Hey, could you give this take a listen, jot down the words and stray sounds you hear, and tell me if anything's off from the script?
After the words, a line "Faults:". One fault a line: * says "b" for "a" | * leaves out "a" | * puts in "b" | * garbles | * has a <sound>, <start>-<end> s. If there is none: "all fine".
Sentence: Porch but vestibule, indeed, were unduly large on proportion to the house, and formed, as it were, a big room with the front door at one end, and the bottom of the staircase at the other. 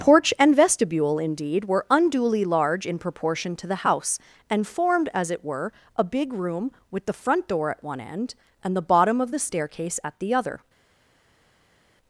Porch and vestibule, indeed, were unduly large in proportion to the house, and formed, as it were, a big room with the front door at one end, and the bottom of the staircase at the other.
Faults:
* says "and" for "but"
* says "in" for "on"